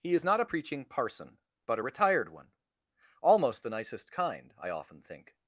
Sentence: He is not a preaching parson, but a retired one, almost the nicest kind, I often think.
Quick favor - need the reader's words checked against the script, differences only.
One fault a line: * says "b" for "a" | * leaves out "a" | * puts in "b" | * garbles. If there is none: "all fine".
all fine